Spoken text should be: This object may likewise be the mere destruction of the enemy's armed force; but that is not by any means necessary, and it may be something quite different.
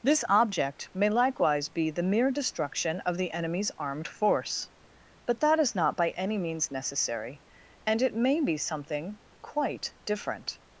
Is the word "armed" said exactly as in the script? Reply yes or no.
yes